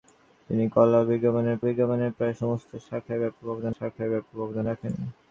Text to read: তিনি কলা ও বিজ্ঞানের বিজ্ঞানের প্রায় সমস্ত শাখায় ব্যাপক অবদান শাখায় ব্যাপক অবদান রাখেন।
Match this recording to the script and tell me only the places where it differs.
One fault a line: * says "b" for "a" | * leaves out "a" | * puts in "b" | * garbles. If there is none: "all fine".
all fine